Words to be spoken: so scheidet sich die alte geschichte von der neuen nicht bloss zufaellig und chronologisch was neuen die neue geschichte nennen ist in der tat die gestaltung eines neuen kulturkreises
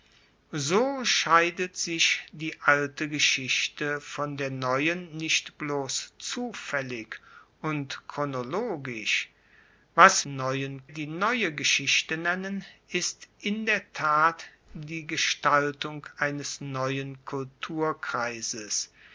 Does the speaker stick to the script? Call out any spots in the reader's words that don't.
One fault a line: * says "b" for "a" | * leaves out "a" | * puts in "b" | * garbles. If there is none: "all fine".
all fine